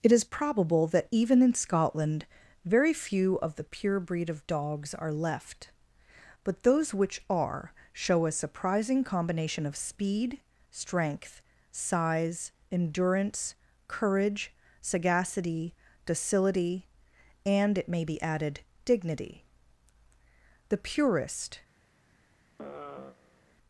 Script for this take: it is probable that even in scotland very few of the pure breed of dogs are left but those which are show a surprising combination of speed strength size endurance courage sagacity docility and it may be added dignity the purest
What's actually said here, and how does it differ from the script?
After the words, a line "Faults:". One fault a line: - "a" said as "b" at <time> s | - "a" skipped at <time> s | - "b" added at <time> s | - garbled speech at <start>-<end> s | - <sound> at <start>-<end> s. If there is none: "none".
it is probable that even in scotland very few of the pure breed of dogs are left but those which are show a surprising combination of speed strength size endurance courage sagacity docility and it may be added dignity the purest
Faults:
- sigh at 22.6-23.6 s